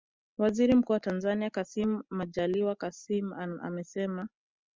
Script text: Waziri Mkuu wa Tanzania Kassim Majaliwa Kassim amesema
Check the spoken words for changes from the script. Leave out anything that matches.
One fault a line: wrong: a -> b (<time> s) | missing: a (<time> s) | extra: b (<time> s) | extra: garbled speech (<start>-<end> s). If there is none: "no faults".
no faults